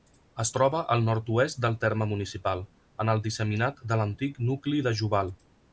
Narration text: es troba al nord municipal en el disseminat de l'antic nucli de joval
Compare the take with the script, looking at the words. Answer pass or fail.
fail